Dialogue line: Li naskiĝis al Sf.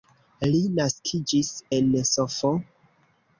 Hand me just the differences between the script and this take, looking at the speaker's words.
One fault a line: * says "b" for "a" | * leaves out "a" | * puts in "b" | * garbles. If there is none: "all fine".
* says "en" for "al"